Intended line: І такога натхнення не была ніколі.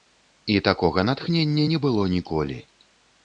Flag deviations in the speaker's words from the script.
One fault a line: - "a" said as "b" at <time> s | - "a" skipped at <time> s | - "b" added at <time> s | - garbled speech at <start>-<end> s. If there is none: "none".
- "была" said as "было" at 1.9 s